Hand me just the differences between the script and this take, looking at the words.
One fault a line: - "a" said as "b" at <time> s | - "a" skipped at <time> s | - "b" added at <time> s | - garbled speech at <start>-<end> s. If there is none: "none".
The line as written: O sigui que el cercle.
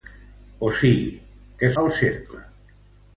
none